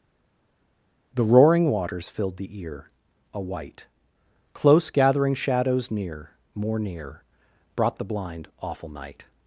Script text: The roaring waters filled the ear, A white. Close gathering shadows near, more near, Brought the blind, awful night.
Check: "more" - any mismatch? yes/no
no